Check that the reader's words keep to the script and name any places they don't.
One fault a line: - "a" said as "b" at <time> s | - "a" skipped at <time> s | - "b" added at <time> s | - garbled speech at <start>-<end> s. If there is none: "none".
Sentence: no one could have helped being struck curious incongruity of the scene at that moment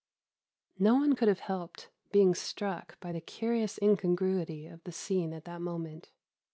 - "by the" added at 3.0 s